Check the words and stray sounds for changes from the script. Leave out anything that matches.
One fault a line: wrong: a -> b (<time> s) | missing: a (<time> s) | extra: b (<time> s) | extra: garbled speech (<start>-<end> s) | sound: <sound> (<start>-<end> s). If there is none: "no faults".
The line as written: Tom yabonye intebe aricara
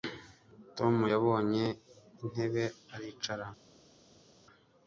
no faults